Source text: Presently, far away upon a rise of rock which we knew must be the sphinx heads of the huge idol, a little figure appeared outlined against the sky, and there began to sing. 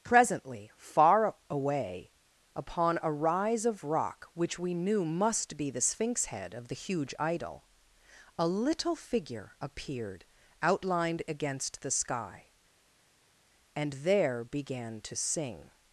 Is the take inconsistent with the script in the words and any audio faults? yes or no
yes